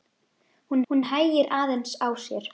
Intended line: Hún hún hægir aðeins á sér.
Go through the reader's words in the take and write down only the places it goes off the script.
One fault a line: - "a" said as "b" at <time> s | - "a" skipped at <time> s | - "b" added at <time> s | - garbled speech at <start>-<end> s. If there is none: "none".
none